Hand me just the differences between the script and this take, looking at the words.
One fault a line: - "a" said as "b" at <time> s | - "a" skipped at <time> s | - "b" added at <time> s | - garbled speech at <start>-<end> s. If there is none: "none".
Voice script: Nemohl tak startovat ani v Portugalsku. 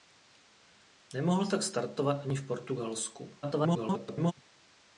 - garbled speech at 3.4-4.3 s